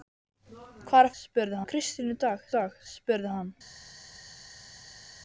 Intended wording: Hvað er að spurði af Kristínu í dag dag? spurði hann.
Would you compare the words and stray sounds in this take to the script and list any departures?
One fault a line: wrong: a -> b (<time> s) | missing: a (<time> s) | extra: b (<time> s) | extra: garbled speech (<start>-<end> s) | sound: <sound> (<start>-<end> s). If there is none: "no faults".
no faults